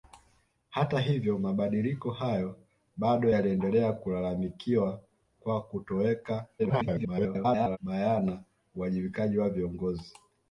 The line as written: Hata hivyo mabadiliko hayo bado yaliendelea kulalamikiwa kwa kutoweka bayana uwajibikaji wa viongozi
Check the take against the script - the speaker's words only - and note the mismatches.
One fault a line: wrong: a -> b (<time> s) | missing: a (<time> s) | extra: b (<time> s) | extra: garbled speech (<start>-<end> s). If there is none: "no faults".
extra: garbled speech (6.6-7.8 s)